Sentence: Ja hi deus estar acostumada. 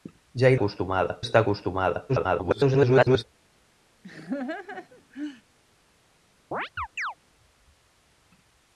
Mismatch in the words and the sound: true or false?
true